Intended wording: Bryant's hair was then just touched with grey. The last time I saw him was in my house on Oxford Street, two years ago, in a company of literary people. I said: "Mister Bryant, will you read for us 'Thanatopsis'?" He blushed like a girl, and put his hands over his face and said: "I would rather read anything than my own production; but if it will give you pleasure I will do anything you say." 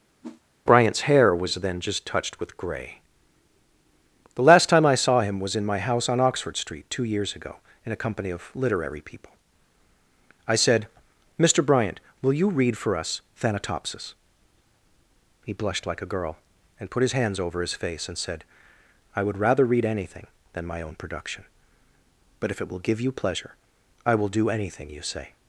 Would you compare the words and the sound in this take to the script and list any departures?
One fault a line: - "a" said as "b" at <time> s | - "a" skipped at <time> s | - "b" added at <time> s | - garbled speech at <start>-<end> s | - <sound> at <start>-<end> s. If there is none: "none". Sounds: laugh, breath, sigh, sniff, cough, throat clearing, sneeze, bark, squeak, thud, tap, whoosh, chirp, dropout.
- whoosh at 0.2-0.4 s